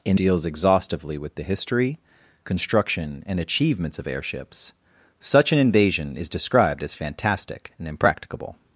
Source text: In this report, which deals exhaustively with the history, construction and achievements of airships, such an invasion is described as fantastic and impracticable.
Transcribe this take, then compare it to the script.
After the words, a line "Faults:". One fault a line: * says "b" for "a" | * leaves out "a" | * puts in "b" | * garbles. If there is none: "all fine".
In deals exhaustively with the history, construction and achievements of airships, such an invasion is described as fantastic and impracticable.
Faults:
* leaves out "this report which"